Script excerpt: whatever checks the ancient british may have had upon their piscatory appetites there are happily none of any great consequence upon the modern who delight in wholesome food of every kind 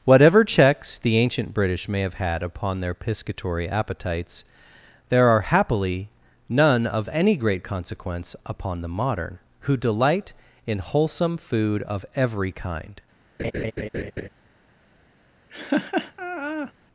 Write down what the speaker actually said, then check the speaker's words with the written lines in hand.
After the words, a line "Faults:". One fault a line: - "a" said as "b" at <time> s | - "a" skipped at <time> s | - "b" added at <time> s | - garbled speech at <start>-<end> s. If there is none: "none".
whatever checks the ancient british may have had upon their piscatory appetites there are happily none of any great consequence upon the modern who delight in wholesome food of every kind
Faults:
none